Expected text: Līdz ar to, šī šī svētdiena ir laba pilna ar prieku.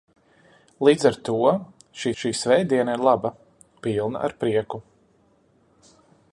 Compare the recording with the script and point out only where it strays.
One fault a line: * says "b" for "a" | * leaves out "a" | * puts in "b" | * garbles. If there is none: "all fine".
all fine